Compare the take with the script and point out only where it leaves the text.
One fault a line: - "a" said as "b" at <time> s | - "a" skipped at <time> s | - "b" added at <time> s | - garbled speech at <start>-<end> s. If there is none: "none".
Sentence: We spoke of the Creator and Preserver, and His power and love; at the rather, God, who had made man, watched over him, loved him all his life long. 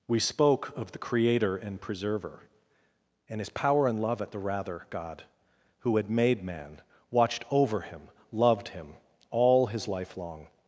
none